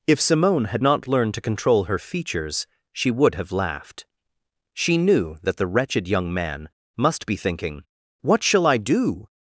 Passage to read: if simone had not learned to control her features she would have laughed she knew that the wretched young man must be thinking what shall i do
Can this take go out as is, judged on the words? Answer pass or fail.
pass